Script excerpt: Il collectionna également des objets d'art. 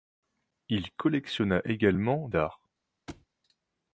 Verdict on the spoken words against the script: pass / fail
fail